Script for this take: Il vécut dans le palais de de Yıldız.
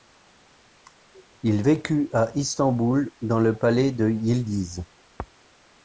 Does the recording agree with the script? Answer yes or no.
no